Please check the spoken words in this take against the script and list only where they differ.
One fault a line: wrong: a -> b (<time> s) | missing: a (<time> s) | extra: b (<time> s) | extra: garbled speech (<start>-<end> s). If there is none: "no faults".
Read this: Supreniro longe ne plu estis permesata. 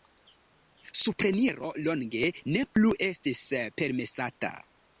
no faults